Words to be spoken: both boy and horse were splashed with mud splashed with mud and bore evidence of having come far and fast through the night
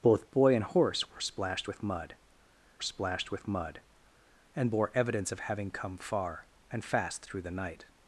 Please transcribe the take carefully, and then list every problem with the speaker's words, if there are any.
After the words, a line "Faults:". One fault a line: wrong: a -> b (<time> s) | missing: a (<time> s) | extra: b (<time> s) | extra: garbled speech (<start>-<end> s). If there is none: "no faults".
both boy and horse were splashed with mud splashed with mud and bore evidence of having come far and fast through the night
Faults:
no faults